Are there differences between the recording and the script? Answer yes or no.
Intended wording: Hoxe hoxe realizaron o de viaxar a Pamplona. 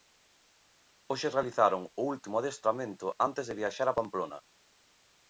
yes